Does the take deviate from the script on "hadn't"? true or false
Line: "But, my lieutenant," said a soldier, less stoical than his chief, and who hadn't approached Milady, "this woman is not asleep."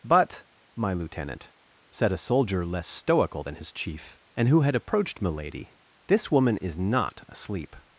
true